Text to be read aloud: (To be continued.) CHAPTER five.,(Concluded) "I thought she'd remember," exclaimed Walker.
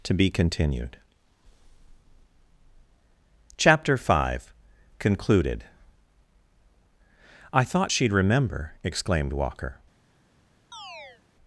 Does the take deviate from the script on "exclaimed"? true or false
false